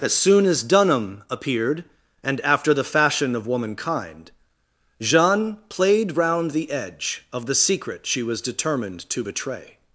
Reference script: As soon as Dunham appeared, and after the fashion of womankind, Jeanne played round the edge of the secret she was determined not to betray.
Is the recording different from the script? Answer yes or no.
yes